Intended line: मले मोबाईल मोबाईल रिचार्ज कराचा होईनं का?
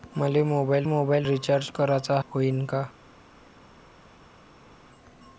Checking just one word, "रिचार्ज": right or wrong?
right